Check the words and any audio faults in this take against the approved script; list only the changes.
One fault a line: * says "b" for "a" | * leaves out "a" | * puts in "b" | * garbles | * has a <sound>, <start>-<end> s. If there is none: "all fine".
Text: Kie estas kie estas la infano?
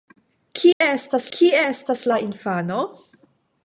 * has a dropout, 0.7-0.8 s